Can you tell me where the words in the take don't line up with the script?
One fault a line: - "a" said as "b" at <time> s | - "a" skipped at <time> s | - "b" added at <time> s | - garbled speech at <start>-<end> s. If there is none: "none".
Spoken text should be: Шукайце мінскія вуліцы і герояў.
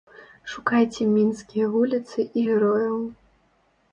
none